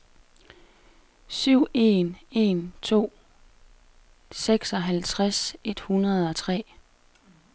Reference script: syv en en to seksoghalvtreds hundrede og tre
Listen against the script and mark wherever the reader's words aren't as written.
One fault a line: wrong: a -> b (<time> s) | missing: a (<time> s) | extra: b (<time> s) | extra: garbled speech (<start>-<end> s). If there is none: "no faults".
extra: et (5.6 s)